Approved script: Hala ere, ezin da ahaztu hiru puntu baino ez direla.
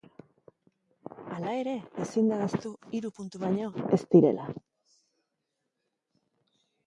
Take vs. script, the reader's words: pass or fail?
pass